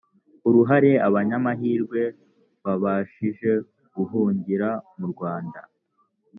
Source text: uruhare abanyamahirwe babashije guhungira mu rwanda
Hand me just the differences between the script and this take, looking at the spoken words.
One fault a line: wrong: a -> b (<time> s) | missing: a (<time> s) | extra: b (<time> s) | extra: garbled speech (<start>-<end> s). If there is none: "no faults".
no faults